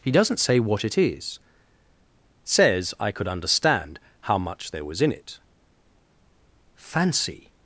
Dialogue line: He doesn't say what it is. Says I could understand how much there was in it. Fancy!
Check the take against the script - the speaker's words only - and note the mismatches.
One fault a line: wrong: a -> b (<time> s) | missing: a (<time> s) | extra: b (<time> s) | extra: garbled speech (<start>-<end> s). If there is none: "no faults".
no faults